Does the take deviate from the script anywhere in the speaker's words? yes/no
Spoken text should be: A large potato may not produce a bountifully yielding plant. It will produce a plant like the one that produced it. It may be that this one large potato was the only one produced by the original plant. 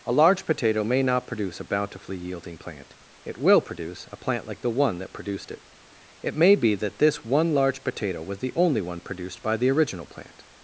no